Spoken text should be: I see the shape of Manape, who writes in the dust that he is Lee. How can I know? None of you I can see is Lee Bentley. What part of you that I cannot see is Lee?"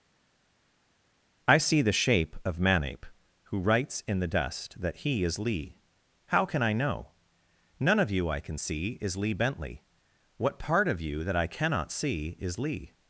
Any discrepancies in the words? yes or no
no